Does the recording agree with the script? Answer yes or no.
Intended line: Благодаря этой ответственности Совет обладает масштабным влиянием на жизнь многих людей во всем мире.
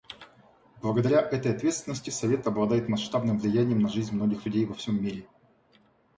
yes